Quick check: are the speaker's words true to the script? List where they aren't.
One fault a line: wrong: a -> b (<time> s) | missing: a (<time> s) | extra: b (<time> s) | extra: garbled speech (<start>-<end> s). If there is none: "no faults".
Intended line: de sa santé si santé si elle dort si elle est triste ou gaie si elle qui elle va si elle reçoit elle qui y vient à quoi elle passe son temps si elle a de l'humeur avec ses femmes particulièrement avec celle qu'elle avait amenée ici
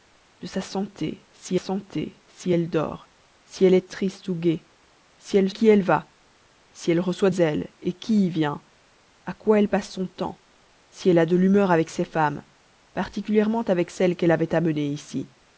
no faults